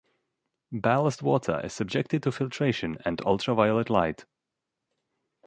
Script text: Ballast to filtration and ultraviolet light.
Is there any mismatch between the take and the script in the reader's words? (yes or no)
yes